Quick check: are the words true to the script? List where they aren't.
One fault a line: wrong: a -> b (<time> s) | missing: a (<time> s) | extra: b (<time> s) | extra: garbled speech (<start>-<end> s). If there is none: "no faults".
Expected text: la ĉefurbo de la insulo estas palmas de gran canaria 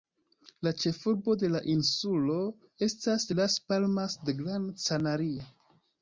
extra: las (3.4 s)